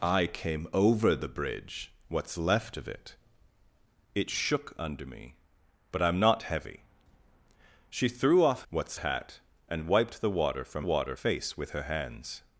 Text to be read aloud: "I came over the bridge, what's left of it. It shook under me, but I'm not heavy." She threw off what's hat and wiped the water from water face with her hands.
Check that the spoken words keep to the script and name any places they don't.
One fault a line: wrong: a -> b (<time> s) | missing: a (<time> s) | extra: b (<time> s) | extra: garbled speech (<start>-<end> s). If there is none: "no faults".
no faults